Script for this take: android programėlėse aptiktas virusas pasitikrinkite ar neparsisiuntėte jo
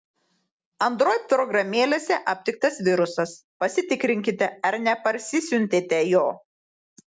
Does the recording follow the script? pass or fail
pass